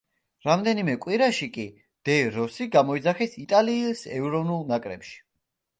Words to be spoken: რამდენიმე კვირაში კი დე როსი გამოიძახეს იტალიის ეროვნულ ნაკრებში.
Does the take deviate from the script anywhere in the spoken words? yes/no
no